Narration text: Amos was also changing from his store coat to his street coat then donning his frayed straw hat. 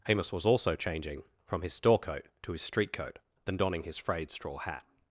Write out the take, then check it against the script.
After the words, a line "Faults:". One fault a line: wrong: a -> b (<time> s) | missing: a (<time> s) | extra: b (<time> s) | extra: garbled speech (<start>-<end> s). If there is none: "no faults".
Amos was also changing from his store coat to his street coat then donning his frayed straw hat.
Faults:
no faults